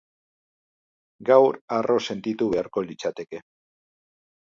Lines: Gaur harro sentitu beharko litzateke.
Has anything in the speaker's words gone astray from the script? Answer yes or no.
no